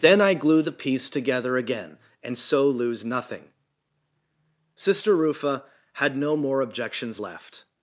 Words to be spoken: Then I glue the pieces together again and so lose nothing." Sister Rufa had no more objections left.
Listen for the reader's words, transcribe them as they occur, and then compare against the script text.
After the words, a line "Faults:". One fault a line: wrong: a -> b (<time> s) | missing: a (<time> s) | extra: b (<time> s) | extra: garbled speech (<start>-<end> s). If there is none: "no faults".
Then I glue the piece together again and so lose nothing." Sister Rufa had no more objections left.
Faults:
wrong: pieces -> piece (0.7 s)